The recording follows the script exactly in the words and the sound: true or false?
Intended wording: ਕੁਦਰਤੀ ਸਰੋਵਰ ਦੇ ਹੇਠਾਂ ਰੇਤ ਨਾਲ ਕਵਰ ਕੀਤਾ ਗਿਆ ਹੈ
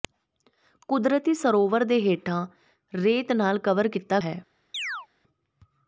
false